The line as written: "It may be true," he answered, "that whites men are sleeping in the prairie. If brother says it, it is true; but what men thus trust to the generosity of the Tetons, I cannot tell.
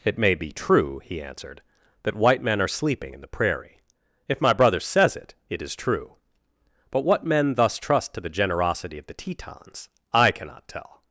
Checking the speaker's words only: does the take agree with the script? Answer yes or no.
no